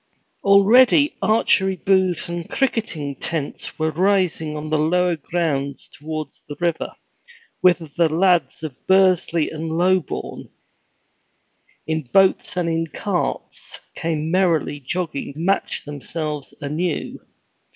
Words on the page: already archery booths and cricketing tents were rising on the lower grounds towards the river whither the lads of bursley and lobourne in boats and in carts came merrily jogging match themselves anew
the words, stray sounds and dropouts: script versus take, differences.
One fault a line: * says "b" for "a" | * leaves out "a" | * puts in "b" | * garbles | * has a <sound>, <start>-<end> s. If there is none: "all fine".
all fine